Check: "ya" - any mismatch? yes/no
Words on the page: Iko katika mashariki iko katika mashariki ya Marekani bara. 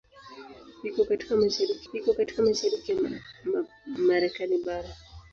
no